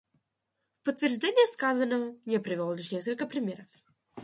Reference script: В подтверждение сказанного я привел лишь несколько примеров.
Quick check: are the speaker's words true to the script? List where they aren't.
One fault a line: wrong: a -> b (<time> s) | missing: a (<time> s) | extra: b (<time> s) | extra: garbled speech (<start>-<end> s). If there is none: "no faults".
no faults